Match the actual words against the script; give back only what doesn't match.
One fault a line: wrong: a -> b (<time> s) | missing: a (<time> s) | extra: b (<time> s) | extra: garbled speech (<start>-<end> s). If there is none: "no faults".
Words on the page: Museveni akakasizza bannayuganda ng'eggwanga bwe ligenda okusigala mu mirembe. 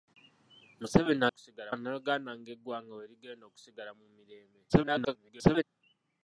wrong: akakasizza -> okusigala (1.3 s)
extra: garbled speech (4.7-5.6 s)